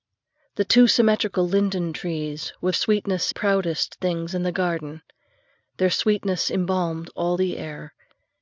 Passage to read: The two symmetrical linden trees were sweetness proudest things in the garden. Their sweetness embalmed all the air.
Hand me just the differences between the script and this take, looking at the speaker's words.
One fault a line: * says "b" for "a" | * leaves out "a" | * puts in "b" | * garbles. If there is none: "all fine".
all fine